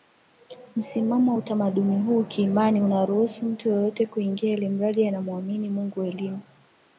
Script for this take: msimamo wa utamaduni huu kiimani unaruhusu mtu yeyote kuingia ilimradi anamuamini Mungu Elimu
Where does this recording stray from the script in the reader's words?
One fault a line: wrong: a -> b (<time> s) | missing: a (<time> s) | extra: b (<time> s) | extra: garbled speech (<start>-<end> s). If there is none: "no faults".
no faults